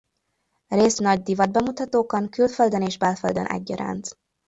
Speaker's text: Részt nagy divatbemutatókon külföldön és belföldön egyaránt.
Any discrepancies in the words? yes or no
no